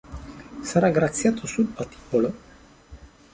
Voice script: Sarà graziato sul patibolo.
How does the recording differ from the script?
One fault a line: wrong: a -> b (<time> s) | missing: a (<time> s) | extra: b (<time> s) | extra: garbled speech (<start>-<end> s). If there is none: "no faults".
no faults